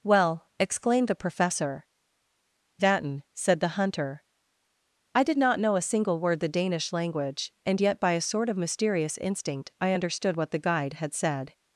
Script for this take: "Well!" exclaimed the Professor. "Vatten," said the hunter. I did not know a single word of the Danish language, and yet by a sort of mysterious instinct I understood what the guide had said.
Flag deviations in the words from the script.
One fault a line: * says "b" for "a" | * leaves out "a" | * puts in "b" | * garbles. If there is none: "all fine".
* leaves out "of"